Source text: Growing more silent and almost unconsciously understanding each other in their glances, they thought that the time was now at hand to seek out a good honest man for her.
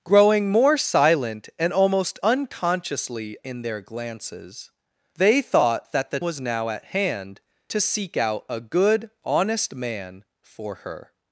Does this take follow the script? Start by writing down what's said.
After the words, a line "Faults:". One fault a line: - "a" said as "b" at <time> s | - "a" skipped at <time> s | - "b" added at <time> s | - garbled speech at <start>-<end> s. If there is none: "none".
Growing more silent and almost unconsciously in their glances, they thought that the was now at hand to seek out a good honest man for her.
Faults:
- "understanding each other" skipped at 3.4 s
- "time" skipped at 6.2 s